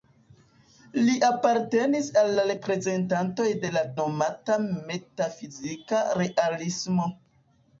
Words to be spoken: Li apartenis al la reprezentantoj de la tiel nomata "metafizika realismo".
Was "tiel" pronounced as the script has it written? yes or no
no